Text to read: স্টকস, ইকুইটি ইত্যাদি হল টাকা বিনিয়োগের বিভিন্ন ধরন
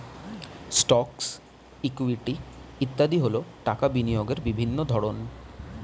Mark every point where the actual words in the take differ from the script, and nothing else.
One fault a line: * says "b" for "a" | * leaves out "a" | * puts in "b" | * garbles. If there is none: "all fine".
all fine